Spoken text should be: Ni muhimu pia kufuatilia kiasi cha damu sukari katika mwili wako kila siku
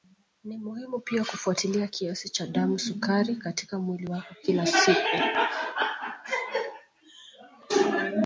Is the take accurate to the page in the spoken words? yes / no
yes